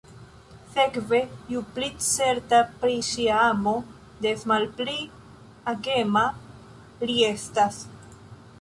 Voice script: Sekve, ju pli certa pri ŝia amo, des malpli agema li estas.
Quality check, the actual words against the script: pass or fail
pass